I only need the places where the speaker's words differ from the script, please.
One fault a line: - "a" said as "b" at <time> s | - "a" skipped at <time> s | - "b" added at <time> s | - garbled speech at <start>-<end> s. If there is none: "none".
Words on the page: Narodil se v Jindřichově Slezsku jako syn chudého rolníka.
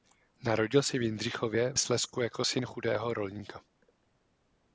none